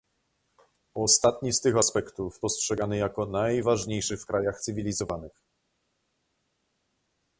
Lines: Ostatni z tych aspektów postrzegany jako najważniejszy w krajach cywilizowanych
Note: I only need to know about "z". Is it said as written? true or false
true